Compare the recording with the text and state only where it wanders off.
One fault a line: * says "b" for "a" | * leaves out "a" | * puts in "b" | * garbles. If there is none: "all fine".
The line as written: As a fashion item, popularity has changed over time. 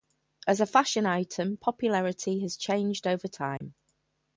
all fine